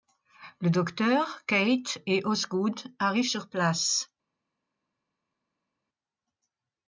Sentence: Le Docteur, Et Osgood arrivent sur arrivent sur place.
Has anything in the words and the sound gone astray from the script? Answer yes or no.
yes